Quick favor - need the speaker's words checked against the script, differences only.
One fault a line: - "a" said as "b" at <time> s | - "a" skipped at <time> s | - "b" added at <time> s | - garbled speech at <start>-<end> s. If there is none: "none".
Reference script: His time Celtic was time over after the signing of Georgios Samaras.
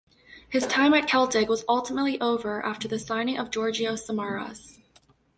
- "at" added at 0.9 s
- "time" said as "ultimately" at 1.7 s